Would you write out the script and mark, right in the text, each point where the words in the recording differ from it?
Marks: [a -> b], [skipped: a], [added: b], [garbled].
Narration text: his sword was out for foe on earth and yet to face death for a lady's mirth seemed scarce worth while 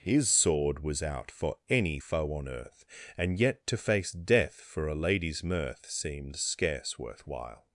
his sword was out for [added: any] foe on earth and yet to face death for a lady's mirth seemed scarce worth while